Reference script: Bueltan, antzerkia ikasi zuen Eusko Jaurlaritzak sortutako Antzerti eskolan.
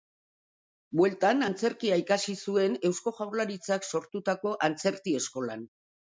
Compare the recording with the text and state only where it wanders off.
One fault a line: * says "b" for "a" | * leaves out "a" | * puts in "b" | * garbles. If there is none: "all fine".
all fine